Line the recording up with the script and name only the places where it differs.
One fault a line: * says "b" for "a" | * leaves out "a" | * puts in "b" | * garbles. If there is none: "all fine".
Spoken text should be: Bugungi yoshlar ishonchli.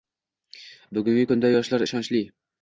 * puts in "kunda"